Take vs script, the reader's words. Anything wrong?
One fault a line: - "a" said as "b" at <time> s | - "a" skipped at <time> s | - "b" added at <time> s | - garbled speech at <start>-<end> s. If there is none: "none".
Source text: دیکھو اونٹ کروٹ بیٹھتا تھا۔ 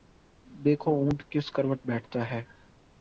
- "کس" added at 1.3 s
- "تھا" said as "ہے" at 2.3 s